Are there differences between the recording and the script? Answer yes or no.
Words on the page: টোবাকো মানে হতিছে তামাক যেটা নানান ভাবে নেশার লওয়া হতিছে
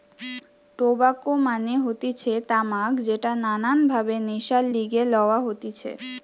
yes